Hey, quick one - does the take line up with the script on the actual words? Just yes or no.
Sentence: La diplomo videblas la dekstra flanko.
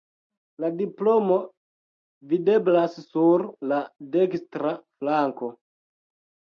no